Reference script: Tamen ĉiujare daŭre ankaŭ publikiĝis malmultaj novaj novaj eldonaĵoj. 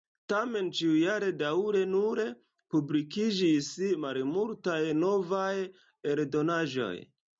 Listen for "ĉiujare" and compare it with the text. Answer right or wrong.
right